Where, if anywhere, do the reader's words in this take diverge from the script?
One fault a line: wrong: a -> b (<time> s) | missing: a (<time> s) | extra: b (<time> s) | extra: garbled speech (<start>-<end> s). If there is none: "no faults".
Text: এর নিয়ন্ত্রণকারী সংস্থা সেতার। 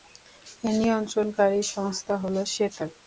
extra: হল (2.2 s)